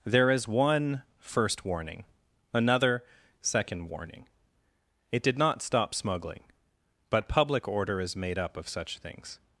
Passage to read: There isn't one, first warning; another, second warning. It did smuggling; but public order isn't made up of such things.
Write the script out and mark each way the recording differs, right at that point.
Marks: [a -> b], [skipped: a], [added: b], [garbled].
There [isn't -> is] one, first warning; another, second warning. It did [added: not stop] smuggling; but public order [isn't -> is] made up of such things.